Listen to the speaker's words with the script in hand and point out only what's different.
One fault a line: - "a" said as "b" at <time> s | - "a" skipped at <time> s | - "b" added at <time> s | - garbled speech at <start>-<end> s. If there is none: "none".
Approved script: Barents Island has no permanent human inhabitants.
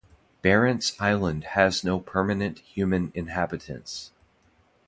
none